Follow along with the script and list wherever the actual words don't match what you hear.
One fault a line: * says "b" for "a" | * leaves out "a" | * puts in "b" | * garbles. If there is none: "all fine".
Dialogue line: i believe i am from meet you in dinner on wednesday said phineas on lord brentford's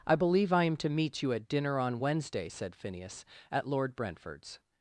* says "to" for "from"
* says "at" for "in"
* says "at" for "on"